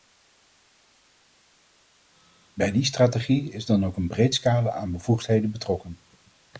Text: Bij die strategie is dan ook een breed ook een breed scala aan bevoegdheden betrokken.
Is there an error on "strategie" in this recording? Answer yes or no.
no